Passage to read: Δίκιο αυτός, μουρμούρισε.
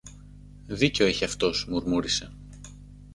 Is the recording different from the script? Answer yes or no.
yes